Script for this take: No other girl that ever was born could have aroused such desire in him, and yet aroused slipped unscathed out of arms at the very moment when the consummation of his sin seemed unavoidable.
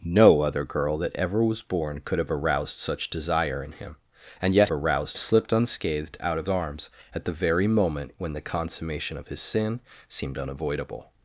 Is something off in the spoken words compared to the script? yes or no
no